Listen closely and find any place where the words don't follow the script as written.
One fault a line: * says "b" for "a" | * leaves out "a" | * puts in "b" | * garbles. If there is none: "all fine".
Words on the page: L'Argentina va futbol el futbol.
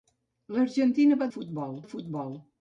all fine